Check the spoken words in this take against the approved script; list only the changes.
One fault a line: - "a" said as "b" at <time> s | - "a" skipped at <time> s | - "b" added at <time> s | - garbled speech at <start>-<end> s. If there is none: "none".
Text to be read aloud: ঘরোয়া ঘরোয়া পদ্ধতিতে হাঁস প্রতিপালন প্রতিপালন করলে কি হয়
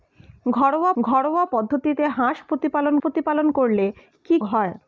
none